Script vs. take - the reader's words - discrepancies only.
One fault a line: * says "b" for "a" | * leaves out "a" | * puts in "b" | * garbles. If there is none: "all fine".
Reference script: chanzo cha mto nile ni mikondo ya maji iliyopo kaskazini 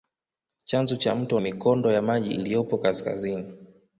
* leaves out "nile ni"